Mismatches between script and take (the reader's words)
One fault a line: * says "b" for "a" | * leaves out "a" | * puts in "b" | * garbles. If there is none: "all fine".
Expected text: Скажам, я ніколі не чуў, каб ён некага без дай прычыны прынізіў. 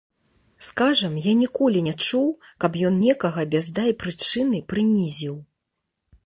all fine